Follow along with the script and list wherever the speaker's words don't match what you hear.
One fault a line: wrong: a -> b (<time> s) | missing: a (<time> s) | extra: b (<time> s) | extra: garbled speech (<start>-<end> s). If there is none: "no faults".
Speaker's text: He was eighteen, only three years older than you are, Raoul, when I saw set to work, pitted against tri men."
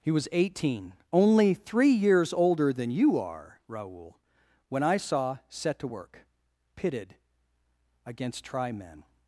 no faults